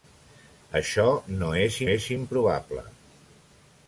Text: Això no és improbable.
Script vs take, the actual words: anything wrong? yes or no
yes